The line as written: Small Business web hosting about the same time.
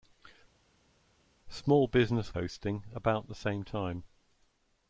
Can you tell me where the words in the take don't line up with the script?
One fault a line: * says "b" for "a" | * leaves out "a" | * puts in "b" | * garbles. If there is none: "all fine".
* leaves out "web"